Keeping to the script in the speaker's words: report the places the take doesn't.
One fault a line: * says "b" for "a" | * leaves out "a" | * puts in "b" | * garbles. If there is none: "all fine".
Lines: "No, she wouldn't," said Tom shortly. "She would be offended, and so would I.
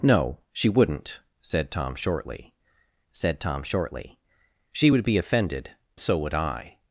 * puts in "said Tom shortly"
* leaves out "and"